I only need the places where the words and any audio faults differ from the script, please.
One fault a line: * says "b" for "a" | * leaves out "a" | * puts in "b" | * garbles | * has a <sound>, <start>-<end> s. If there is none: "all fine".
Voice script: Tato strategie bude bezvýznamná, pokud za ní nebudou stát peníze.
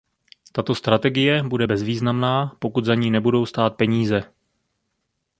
all fine